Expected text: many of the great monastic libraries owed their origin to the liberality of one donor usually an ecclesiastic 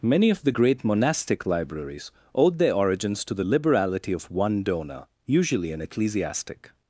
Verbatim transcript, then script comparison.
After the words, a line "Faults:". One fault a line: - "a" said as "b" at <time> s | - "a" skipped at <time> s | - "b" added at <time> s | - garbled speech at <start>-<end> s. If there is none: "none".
many of the great monastic libraries owed their origins to the liberality of one donor usually an ecclesiastic
Faults:
- "origin" said as "origins" at 2.7 s